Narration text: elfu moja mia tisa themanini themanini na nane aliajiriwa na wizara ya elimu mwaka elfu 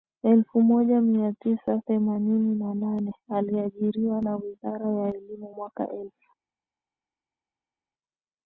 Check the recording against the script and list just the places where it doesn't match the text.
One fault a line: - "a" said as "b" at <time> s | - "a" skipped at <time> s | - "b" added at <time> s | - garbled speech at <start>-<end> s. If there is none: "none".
- "themanini" skipped at 2.5 s